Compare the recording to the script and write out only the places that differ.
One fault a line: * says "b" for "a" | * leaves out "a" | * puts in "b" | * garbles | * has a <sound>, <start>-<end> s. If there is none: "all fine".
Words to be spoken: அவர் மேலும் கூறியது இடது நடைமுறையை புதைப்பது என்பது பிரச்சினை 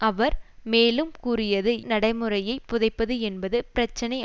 * leaves out "இடது"